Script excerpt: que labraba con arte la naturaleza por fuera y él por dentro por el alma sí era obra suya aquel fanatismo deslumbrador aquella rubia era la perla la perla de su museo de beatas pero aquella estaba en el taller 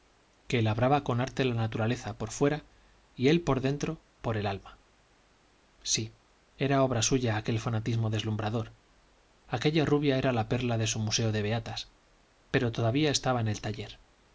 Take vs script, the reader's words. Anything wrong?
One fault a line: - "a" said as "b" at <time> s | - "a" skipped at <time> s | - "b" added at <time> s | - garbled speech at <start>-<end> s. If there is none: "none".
- "la perla" skipped at 10.8 s
- "aquella" said as "todavía" at 12.7 s